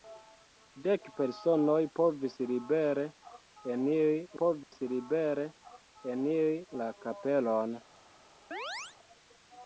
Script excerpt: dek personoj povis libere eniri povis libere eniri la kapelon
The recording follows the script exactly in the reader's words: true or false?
true